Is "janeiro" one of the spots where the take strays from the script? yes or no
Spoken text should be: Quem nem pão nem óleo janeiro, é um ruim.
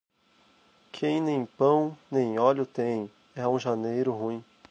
yes